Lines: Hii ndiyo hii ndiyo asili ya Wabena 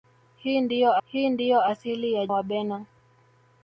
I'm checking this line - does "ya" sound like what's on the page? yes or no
yes